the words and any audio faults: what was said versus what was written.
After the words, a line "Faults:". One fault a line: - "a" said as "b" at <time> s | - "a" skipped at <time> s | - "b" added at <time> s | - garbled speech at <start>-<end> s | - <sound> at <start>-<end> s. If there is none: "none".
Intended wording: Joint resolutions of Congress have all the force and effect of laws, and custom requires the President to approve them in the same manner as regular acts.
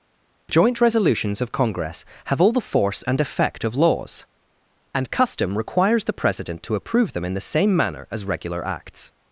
Joint resolutions of Congress have all the force and effect of laws, and custom requires the President to approve them in the same manner as regular acts.
Faults:
none